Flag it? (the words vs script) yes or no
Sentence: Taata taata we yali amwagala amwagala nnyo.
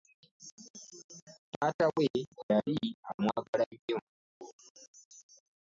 yes